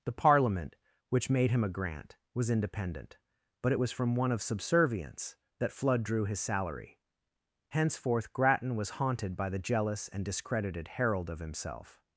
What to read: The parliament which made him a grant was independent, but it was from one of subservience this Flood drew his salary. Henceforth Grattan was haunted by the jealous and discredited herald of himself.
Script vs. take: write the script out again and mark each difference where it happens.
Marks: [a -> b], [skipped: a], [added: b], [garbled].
The parliament which made him a grant was independent, but it was from one of subservience [this -> that] Flood drew his salary. Henceforth Grattan was haunted by the jealous and discredited herald of himself.